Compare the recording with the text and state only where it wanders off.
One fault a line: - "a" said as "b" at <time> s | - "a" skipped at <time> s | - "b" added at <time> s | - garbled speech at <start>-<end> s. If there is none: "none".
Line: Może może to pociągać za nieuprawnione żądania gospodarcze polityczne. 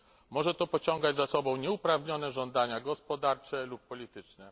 - "może" skipped at 0.5 s
- "sobą" added at 1.2 s
- "lub" added at 3.6 s